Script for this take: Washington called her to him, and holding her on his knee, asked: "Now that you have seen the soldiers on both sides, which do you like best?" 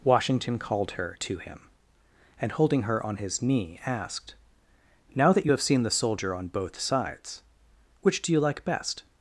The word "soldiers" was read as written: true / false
false